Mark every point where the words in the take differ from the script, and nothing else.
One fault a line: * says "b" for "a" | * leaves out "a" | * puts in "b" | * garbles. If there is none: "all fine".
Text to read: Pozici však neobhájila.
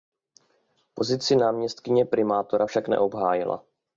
* puts in "náměstkyně primátora"